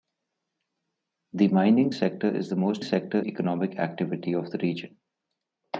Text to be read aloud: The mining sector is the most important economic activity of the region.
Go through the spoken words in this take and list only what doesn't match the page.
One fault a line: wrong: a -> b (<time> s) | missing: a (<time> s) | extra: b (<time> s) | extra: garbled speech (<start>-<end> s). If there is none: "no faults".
wrong: important -> sector (2.8 s)